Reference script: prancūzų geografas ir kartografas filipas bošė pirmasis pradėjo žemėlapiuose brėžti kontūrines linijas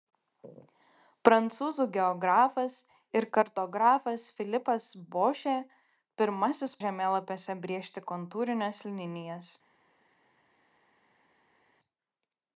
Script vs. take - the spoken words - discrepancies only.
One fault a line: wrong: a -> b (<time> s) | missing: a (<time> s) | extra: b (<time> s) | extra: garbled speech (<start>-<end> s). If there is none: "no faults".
missing: pradėjo (6.8 s)